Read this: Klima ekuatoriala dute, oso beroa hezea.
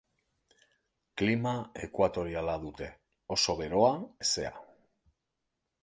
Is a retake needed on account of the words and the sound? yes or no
no